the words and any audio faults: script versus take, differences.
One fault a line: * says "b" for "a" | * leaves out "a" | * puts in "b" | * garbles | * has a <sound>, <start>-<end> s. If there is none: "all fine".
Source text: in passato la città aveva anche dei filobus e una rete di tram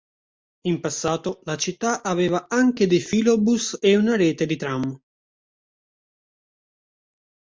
all fine